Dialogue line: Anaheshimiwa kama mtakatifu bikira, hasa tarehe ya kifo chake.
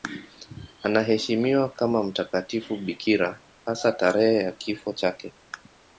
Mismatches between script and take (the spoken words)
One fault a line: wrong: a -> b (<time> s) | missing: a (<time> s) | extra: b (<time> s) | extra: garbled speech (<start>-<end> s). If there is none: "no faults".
no faults